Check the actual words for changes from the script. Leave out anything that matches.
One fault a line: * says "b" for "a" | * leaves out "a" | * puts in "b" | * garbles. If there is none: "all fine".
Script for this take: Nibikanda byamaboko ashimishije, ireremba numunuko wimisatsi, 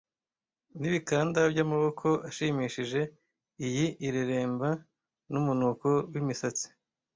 * puts in "iyi"